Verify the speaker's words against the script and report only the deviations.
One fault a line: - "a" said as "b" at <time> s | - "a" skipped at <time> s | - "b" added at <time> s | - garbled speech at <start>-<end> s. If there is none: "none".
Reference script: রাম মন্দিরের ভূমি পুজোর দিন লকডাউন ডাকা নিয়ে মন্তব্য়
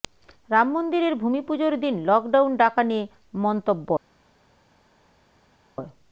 none